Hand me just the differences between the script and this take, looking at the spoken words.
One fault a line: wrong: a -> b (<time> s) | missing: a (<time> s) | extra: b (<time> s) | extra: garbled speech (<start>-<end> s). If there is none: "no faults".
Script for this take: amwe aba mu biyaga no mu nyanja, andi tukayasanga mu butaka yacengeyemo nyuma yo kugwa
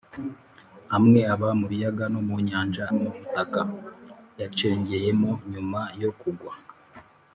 missing: andi tukayasanga (2.8 s)